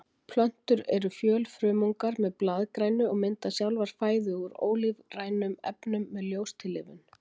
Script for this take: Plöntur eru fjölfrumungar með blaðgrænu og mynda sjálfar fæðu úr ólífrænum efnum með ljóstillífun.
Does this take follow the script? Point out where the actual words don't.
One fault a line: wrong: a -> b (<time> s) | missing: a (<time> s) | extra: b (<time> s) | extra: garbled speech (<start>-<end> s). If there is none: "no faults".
no faults